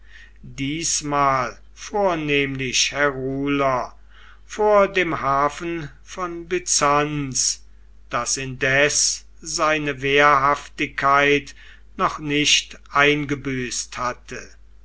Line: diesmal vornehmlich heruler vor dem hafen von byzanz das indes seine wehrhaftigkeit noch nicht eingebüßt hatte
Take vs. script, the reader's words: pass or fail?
pass